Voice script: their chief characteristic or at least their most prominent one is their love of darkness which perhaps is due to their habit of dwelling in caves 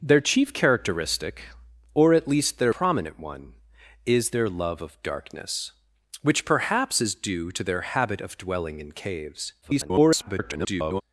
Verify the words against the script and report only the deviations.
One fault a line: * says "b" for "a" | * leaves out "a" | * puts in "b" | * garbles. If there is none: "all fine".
* leaves out "most"
* garbles